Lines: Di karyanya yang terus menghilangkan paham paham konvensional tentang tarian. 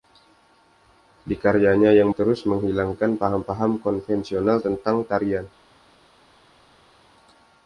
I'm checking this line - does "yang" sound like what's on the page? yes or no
yes